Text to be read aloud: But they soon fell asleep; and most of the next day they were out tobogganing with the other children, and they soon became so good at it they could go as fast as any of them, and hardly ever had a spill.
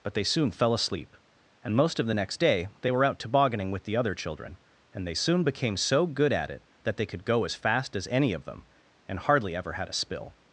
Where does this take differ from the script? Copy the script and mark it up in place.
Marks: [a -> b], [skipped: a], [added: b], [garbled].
But they soon fell asleep; and most of the next day they were out tobogganing with the other children, and they soon became so good at it [added: that] they could go as fast as any of them, and hardly ever had a spill.